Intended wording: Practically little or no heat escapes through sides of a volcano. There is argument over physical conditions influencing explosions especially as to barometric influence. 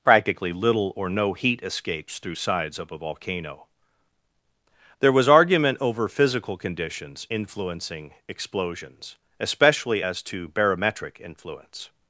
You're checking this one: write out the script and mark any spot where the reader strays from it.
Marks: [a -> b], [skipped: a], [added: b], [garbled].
Practically little or no heat escapes through sides of a volcano. There [is -> was] argument over physical conditions influencing explosions especially as to barometric influence.